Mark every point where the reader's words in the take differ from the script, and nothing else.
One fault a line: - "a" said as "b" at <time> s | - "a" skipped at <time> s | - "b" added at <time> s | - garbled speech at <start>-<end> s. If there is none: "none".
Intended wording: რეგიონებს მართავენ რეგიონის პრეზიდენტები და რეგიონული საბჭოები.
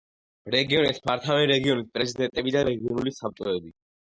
none